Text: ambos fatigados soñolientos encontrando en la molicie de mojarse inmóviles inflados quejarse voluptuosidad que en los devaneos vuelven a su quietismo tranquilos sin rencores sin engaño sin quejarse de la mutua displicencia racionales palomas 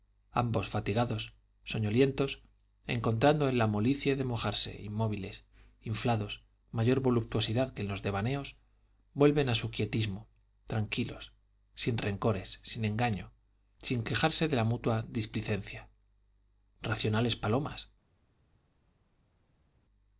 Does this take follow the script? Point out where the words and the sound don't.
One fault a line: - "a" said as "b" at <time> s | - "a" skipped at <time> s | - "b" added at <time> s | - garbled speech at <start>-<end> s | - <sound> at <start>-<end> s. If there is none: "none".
- "quejarse" said as "mayor" at 6.7 s